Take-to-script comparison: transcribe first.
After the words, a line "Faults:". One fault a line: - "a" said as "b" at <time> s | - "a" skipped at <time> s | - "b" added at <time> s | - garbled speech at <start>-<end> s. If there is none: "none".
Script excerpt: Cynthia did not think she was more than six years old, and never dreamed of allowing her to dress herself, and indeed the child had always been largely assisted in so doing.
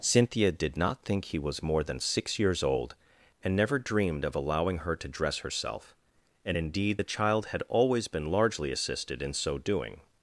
Cynthia did not think he was more than six years old, and never dreamed of allowing her to dress herself, and indeed the child had always been largely assisted in so doing.
Faults:
- "she" said as "he" at 1.2 s